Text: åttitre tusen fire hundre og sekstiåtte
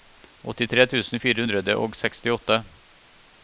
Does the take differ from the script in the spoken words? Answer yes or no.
no